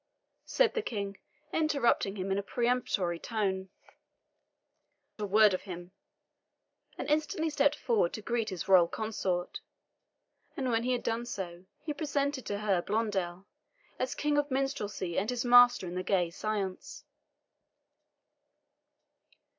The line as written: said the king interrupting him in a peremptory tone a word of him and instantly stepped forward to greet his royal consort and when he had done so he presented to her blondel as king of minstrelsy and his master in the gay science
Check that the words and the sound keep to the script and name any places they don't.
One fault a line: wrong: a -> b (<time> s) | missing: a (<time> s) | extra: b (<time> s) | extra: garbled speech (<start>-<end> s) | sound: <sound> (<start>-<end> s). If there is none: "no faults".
no faults